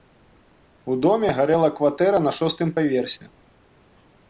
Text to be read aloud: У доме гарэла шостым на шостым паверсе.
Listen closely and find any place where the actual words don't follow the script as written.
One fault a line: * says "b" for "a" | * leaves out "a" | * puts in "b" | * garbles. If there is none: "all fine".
* says "кватэра" for "шостым"